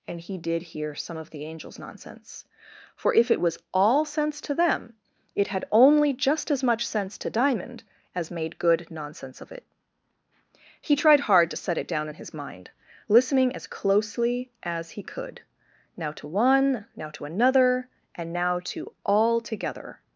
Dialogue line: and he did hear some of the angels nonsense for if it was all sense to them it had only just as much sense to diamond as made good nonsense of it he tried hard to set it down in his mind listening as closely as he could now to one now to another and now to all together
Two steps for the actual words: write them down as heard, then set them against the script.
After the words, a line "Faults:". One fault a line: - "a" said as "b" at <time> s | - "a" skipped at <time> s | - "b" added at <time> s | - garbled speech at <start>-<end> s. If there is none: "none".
and he did hear some of the angels nonsense for if it was all sense to them it had only just as much sense to diamond as made good nonsense of it he tried hard to set it down in his mind listening as closely as he could now to one now to another and now to all together
Faults:
none